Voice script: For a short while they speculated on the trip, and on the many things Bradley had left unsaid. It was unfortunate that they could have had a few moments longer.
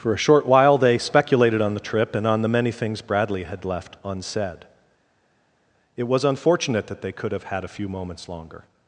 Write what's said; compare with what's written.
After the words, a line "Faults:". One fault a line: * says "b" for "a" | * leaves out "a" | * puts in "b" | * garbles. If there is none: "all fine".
For a short while they speculated on the trip, and on the many things Bradley had left unsaid. It was unfortunate that they could have had a few moments longer.
Faults:
all fine